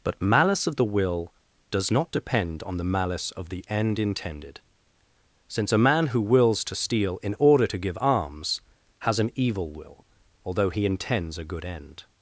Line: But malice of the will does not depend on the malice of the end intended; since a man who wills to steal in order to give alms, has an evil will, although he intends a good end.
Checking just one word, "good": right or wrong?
right